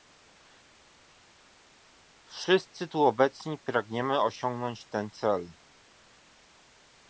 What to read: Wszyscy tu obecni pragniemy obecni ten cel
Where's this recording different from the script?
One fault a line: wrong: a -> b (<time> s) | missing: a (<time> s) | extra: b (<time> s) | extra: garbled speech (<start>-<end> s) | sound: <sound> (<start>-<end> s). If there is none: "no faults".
wrong: obecni -> osiągnąć (4.2 s)